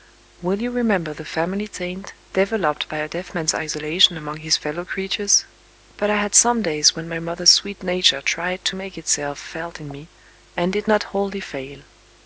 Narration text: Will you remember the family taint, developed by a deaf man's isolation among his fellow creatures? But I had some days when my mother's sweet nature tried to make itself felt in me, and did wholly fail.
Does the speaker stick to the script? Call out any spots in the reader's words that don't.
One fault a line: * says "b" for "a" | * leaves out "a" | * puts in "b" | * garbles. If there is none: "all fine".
* puts in "not"